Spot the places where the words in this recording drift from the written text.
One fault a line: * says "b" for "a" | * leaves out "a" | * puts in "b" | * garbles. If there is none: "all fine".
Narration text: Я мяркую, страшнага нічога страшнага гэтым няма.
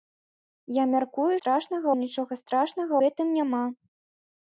all fine